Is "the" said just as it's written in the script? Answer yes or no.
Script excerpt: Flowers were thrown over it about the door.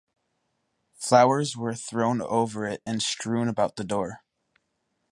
yes